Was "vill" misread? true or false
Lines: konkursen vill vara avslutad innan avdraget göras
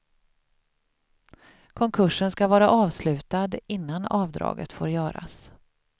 true